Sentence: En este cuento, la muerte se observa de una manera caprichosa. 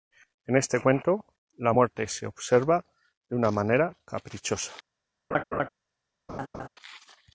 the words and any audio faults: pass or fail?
fail